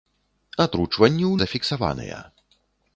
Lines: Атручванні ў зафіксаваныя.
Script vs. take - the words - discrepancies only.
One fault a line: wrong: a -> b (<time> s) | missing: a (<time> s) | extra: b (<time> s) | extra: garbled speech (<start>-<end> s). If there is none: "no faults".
no faults